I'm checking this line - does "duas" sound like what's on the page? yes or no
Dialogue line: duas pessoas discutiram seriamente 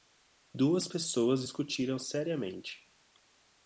yes